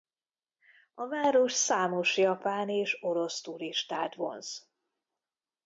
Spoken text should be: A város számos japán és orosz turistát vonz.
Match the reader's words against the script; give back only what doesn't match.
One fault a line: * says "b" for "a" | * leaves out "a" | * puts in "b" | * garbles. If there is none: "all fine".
all fine